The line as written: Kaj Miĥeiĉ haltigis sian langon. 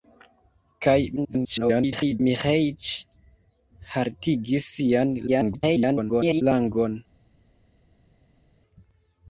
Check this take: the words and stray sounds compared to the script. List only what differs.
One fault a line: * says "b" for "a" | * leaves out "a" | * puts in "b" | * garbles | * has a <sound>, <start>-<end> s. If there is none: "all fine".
* garbles
* garbles